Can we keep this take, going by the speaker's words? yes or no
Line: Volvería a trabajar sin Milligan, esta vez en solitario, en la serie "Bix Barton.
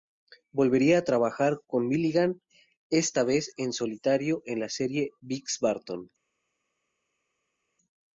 no